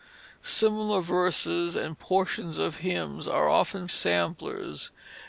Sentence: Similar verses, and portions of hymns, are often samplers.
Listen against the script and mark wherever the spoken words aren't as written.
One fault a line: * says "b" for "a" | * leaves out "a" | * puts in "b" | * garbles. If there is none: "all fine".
all fine